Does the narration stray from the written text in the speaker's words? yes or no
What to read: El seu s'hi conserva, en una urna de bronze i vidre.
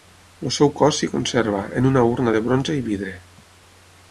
yes